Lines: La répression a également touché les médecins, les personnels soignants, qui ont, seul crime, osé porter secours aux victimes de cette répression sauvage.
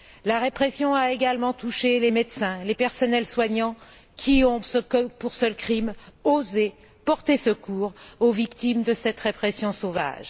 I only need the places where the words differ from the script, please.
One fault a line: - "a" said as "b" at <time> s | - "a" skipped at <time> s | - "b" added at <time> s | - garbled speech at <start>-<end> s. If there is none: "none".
none